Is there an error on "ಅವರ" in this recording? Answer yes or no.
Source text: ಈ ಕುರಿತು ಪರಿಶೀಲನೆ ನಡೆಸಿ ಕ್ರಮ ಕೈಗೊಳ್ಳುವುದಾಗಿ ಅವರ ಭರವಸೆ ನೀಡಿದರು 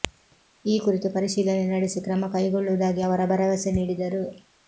no